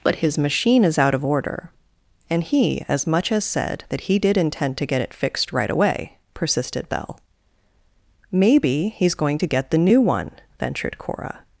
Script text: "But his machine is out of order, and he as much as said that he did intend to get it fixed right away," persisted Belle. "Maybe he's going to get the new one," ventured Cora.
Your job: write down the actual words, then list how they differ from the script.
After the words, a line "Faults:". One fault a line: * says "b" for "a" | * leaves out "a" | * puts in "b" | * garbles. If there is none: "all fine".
"But his machine is out of order, and he as much as said that he did intend to get it fixed right away," persisted Belle. "Maybe he's going to get the new one," ventured Cora.
Faults:
all fine